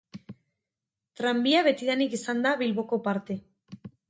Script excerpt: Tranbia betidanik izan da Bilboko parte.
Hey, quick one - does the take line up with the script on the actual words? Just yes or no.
yes